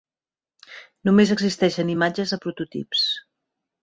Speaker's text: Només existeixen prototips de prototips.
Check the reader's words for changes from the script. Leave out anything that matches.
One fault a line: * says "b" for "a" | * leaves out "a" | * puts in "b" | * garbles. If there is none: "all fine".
* says "imatges" for "prototips"